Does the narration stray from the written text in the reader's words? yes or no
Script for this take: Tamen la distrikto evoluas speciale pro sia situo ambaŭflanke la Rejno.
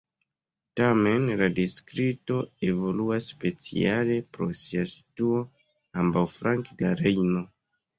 no